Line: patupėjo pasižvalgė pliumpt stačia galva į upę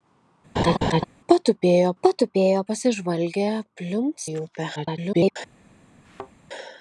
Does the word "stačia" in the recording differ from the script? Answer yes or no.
yes